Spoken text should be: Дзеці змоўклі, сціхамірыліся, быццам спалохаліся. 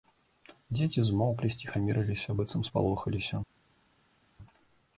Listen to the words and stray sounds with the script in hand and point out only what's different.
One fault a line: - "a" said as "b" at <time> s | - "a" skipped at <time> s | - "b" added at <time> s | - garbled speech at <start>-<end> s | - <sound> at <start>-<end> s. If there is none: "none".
none